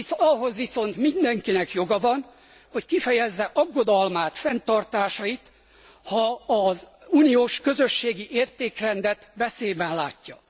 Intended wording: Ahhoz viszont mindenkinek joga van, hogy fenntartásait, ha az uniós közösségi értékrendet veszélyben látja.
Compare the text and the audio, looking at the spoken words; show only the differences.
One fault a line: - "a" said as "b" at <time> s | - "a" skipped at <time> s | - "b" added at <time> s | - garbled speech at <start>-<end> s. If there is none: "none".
- "kifejezze aggodalmát" added at 2.9 s